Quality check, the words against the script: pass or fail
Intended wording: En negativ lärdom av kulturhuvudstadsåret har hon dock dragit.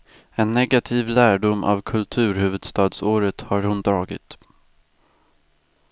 fail